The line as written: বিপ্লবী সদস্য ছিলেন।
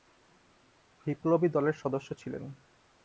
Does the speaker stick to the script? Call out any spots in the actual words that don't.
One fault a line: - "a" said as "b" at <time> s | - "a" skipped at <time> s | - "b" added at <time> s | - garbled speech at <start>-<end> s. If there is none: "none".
- "দলের" added at 1.5 s